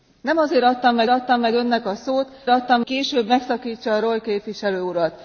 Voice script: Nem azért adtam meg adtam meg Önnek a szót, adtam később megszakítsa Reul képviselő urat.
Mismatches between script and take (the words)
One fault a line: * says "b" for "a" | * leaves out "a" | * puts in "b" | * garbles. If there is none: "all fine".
all fine